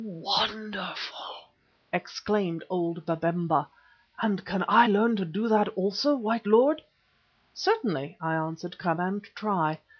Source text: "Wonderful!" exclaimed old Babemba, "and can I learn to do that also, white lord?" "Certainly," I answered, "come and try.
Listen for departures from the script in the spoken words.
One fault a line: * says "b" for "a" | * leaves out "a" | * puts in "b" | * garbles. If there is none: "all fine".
all fine